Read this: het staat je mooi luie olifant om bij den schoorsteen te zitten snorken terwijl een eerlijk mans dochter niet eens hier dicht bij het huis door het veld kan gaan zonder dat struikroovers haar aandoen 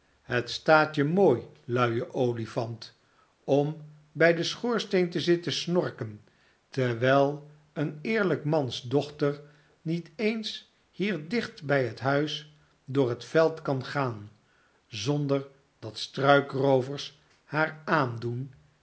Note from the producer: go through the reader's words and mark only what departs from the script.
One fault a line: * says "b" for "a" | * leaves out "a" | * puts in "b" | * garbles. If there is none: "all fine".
all fine